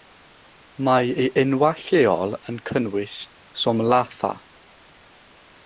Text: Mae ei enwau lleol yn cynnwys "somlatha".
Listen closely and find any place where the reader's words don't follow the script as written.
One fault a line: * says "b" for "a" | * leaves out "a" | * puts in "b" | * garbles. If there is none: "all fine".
all fine